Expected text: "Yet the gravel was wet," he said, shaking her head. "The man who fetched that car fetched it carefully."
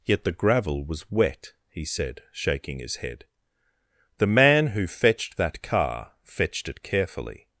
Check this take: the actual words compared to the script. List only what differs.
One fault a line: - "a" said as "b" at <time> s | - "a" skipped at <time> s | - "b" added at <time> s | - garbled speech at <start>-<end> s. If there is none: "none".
- "her" said as "his" at 2.8 s